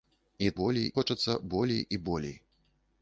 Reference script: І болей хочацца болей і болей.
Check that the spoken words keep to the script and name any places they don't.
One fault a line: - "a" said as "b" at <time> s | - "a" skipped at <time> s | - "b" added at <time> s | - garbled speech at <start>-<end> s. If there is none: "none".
none